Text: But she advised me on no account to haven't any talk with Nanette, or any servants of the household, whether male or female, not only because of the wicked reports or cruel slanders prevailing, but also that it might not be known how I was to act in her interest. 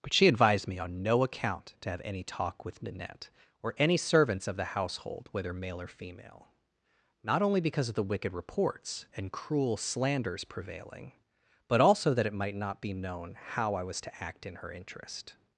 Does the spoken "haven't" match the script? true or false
false